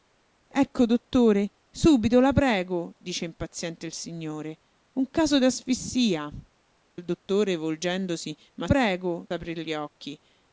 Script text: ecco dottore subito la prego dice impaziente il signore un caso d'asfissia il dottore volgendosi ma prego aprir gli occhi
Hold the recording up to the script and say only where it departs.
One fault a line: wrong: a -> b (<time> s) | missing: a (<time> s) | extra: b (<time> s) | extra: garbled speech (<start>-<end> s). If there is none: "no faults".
no faults